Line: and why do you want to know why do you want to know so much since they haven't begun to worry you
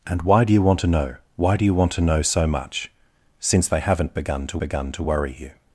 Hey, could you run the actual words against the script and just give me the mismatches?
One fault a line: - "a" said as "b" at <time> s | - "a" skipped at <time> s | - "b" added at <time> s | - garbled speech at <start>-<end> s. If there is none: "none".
- "begun to" added at 4.6 s